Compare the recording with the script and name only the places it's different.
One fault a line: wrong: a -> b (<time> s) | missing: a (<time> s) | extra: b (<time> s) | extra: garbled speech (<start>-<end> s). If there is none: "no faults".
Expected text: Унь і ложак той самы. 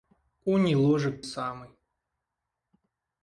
missing: той (1.2 s)